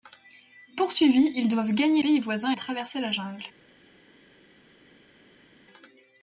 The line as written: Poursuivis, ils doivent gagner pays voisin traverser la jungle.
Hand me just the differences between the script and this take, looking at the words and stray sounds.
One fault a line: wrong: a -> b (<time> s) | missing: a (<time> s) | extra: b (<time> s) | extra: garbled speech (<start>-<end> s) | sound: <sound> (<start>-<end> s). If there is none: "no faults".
no faults